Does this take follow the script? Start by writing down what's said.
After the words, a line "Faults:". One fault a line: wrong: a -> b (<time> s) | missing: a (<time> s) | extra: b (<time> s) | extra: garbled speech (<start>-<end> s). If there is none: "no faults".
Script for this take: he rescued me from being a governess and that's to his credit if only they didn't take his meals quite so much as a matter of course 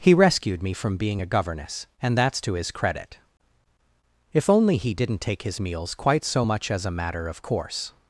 he rescued me from being a governess and that's to his credit if only he didn't take his meals quite so much as a matter of course
Faults:
wrong: they -> he (4.8 s)